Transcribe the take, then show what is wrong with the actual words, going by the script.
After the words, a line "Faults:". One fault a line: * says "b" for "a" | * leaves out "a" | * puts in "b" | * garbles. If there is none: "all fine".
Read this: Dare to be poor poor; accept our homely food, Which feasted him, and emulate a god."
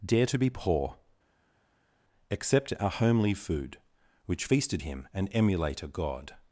Dare to be poor; accept our homely food, Which feasted him, and emulate a god."
Faults:
* leaves out "poor"